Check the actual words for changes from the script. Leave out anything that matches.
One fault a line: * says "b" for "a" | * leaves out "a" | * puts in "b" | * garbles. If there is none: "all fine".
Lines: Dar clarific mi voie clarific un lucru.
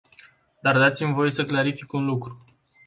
* says "dați" for "clarific"
* puts in "să"